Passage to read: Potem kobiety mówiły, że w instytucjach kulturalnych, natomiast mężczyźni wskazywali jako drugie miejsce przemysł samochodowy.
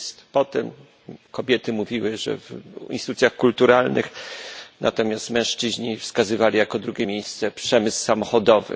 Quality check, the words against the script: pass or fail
pass